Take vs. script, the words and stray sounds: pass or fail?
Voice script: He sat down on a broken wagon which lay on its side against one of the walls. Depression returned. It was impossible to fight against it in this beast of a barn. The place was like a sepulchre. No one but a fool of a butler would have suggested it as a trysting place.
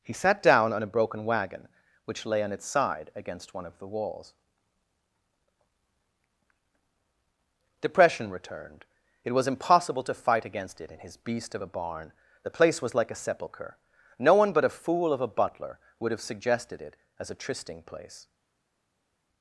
fail